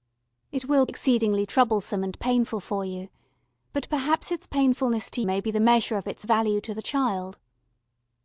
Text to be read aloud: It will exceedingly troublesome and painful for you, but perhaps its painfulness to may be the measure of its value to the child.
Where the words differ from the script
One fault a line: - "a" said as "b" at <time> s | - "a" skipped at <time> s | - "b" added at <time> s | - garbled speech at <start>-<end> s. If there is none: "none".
none